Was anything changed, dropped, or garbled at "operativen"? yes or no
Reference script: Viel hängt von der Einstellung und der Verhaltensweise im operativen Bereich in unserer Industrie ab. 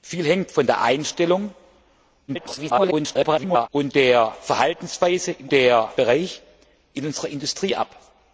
yes